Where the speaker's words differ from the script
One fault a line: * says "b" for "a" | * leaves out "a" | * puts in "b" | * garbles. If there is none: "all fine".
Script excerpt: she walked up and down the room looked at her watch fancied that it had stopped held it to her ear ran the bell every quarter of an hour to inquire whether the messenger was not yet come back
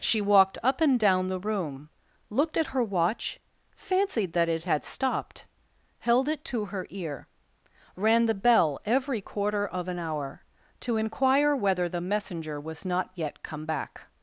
all fine